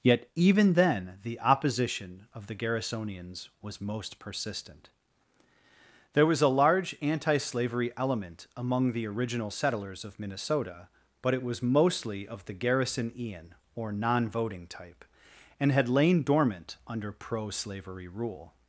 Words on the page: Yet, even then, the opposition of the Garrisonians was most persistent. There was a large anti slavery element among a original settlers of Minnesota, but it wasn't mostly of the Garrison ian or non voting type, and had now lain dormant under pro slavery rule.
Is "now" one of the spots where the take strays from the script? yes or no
yes